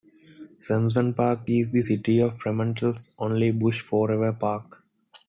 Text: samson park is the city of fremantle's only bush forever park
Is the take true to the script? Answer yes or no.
yes